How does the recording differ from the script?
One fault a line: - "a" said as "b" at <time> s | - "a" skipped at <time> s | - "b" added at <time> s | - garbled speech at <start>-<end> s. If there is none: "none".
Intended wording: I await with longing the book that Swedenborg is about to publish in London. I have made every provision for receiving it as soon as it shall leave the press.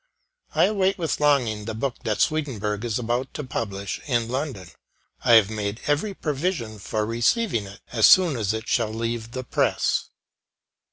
none